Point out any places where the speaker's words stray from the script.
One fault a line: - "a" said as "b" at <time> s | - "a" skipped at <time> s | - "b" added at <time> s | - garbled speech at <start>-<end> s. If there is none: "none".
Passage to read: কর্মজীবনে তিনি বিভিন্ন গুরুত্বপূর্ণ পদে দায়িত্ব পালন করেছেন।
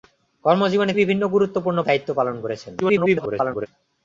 - "তিনি" skipped at 0.9 s
- "পদে" skipped at 1.8 s
- garbled speech at 2.8-3.7 s